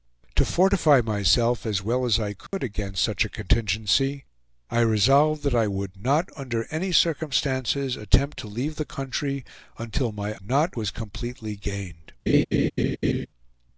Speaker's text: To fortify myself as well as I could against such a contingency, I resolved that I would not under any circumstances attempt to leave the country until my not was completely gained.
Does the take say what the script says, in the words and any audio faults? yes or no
no